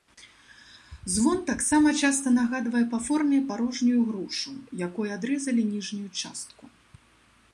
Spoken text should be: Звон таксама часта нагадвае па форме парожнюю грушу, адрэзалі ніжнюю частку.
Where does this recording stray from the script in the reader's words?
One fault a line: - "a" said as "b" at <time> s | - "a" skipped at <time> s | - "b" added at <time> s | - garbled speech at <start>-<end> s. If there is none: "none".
- "якой" added at 4.9 s